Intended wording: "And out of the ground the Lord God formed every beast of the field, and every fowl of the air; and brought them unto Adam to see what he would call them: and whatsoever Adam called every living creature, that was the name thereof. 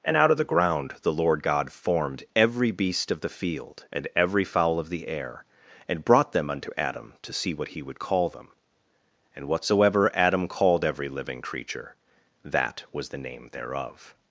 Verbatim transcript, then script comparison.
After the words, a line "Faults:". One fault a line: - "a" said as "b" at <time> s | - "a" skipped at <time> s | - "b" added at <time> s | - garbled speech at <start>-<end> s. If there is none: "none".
"And out of the ground the Lord God formed every beast of the field, and every fowl of the air; and brought them unto Adam to see what he would call them: and whatsoever Adam called every living creature, that was the name thereof.
Faults:
none